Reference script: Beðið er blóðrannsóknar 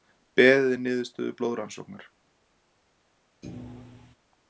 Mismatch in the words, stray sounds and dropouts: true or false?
true